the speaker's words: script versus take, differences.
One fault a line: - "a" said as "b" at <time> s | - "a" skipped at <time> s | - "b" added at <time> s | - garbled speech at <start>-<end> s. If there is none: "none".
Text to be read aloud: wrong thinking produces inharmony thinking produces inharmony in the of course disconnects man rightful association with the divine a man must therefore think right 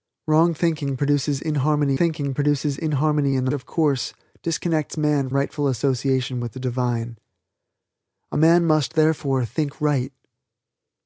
none